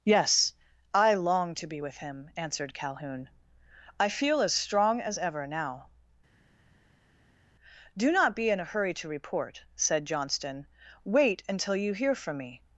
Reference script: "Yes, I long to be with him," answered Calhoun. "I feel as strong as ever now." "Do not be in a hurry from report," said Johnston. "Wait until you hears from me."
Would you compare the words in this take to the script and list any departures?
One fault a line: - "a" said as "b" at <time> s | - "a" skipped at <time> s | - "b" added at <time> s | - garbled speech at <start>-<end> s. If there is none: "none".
- "from" said as "to" at 8.9 s
- "hears" said as "hear" at 11.9 s